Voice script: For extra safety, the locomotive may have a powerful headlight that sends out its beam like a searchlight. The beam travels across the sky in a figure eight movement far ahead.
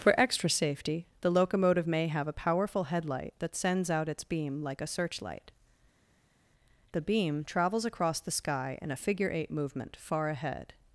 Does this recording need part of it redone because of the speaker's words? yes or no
no